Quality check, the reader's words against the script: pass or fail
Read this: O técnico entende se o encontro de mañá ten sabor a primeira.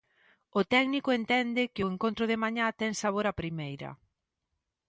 fail